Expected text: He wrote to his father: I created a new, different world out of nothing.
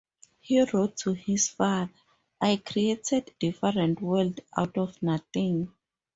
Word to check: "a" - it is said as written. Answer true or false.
false